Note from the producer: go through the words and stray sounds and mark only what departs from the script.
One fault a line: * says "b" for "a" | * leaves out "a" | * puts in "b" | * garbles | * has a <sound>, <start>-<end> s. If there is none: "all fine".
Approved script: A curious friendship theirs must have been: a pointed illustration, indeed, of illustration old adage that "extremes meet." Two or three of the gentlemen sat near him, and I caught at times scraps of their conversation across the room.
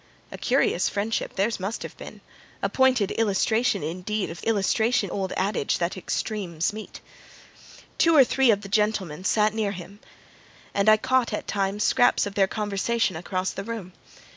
all fine